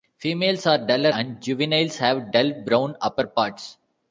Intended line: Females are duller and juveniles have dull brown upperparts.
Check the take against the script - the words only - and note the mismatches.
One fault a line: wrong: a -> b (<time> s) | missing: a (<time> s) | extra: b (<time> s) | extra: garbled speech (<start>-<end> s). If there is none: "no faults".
no faults